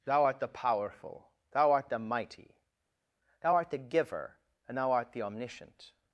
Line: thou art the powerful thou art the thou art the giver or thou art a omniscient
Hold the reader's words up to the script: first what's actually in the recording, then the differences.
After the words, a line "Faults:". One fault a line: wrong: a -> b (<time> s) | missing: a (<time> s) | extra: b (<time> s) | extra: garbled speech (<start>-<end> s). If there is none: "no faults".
thou art the powerful thou art the mighty thou art the giver and thou art the omniscient
Faults:
extra: mighty (2.0 s)
wrong: or -> and (4.7 s)
wrong: a -> the (5.1 s)